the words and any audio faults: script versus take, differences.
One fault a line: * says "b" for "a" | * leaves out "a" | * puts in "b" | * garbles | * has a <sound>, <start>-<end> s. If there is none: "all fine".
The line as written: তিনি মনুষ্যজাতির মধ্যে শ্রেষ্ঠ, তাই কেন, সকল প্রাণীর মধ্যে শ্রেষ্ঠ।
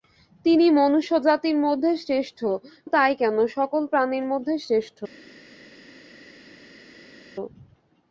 all fine